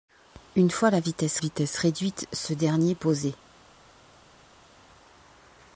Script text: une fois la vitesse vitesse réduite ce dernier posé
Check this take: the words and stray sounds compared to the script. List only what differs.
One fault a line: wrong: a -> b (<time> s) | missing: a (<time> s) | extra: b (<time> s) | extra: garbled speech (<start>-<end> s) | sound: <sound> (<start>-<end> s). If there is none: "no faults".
no faults